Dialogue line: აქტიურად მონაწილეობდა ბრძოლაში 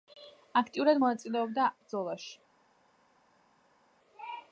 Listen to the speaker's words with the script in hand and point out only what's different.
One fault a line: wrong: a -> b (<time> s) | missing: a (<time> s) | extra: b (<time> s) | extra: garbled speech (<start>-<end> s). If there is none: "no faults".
no faults